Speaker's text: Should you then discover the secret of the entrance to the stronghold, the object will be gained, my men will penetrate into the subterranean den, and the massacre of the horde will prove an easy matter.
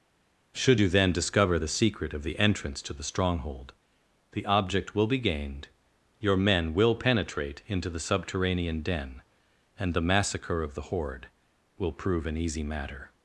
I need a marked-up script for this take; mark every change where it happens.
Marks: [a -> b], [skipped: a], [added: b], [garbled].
Should you then discover the secret of the entrance to the stronghold, the object will be gained, [my -> your] men will penetrate into the subterranean den, and the massacre of the horde will prove an easy matter.